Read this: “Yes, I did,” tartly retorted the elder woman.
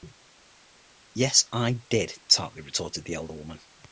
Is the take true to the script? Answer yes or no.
yes